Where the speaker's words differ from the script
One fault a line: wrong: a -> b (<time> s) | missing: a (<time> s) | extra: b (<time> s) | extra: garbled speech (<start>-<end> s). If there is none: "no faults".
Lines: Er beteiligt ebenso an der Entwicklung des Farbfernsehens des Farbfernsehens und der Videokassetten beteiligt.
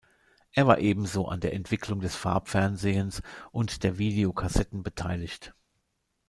wrong: beteiligt -> war (0.7 s)
missing: des Farbfernsehens (3.2 s)